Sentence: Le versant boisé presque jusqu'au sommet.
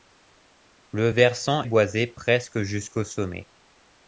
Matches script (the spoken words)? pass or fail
pass